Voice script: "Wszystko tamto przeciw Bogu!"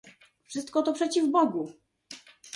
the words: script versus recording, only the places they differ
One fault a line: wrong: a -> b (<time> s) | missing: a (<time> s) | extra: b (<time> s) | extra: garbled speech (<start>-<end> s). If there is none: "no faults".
wrong: tamto -> to (0.8 s)